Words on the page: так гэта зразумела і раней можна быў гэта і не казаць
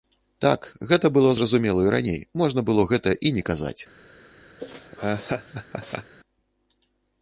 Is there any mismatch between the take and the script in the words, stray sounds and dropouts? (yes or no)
yes